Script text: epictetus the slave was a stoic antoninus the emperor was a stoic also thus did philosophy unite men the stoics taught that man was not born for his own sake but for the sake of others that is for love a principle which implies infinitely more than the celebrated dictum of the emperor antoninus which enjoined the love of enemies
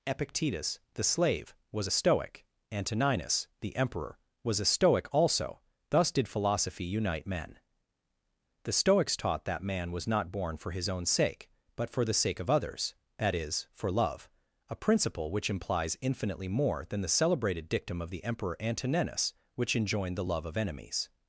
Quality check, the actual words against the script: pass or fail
pass